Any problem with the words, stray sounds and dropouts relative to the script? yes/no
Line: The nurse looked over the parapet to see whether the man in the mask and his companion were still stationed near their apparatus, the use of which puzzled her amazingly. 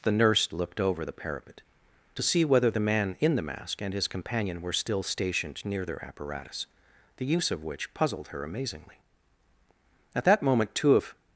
yes